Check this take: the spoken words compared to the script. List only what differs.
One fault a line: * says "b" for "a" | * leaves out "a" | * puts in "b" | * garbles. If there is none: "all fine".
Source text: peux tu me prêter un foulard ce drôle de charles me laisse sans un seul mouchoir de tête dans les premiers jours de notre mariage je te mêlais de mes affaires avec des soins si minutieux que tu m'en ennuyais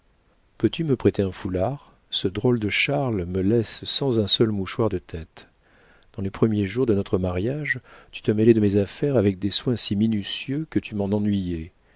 * says "tu" for "je"